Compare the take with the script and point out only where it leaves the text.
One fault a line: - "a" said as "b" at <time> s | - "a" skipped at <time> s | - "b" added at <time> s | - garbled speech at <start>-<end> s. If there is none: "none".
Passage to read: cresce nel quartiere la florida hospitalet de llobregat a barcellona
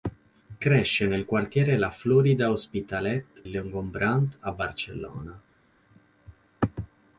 - "de" skipped at 3.4 s